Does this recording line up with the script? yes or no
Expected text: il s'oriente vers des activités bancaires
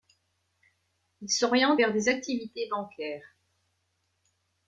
yes